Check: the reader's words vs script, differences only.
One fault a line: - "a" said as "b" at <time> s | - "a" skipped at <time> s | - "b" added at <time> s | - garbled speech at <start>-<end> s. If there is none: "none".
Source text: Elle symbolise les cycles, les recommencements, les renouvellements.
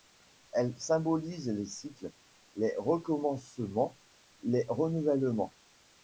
none